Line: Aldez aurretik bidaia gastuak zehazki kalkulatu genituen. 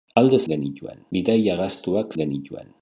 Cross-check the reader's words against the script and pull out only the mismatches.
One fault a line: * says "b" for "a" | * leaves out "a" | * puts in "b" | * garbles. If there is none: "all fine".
* says "genituen" for "aurretik"
* leaves out "zehazki kalkulatu"